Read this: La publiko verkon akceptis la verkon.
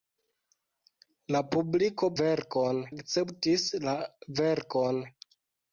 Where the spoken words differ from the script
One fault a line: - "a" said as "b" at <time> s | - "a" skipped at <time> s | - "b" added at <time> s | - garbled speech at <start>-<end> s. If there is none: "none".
none